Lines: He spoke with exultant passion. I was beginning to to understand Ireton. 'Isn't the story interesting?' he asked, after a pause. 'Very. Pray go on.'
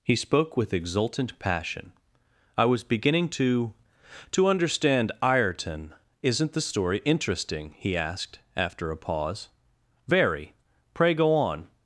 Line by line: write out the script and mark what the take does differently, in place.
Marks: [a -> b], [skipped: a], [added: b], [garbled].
He spoke with exultant passion. I was beginning to to understand Ireton. 'Isn't the story interesting?' he asked, after a pause. 'Very. Pray go on.'